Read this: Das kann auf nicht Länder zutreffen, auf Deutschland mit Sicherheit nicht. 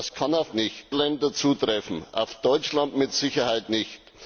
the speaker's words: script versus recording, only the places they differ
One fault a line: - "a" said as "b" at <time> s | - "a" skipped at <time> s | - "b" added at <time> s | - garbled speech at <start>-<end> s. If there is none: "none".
none